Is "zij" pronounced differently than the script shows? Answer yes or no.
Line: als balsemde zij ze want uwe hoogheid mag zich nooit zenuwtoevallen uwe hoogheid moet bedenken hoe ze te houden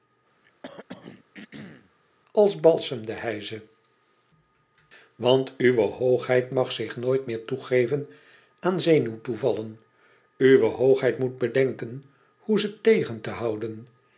yes